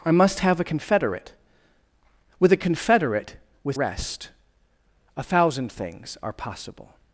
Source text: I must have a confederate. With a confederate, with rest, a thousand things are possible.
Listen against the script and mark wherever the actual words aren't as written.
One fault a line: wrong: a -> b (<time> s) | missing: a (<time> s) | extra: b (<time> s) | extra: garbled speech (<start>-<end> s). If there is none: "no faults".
no faults